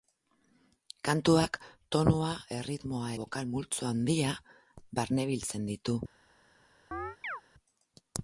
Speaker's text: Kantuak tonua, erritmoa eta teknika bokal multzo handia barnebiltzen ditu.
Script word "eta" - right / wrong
wrong